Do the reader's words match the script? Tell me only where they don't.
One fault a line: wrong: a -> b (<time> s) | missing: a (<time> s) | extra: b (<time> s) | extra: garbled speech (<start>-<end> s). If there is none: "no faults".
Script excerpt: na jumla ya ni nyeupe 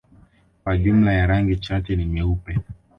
wrong: na -> kwa (0.6 s)
extra: rangi chache (1.3 s)